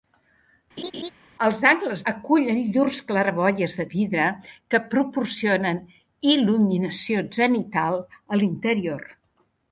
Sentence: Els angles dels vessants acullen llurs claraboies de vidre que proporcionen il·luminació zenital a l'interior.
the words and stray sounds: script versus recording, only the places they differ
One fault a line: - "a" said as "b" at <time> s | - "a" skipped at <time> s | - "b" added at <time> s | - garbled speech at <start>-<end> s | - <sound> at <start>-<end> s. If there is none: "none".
- laugh at 0.8-1.1 s
- "dels vessants" skipped at 2.0 s